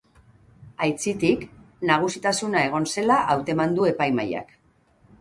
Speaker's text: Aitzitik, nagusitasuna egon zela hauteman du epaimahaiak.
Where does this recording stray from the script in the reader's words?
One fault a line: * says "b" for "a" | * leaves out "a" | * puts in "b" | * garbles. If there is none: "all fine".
all fine